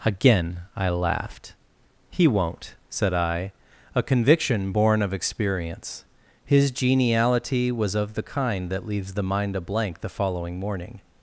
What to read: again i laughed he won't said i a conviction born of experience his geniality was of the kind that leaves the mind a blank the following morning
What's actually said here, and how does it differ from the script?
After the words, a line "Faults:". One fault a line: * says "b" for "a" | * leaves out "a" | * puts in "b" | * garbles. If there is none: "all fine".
again i laughed he won't said i a conviction born of experience his geniality was of the kind that leaves the mind a blank the following morning
Faults:
all fine